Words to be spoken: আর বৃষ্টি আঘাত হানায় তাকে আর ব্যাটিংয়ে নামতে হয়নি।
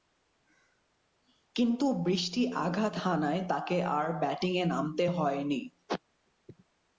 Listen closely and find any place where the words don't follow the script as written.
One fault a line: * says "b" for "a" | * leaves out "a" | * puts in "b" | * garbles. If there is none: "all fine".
* says "কিন্তু" for "আর"